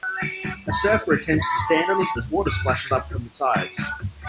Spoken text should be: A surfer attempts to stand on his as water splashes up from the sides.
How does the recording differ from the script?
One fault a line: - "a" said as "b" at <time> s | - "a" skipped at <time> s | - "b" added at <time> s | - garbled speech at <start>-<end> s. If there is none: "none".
none